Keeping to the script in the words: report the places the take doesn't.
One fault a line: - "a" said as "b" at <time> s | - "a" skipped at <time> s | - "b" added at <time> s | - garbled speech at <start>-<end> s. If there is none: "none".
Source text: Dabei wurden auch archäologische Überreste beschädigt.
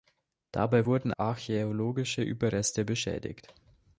- "auch" skipped at 1.1 s